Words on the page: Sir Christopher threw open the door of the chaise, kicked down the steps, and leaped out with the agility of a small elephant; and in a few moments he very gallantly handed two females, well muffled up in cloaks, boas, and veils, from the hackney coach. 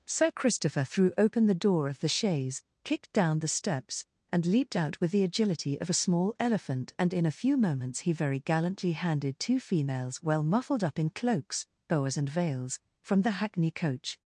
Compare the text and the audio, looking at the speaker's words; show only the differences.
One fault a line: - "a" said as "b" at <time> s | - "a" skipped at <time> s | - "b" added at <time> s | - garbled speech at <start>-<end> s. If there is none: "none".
none